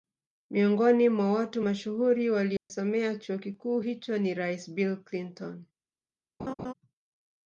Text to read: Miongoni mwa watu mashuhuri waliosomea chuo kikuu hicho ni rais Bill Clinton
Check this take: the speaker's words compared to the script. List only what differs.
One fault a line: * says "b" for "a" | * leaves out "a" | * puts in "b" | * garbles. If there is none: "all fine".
all fine